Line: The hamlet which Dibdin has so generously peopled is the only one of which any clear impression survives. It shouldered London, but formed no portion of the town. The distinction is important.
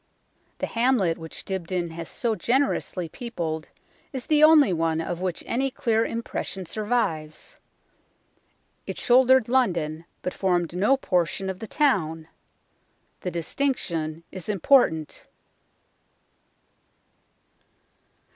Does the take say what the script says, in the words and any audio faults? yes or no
yes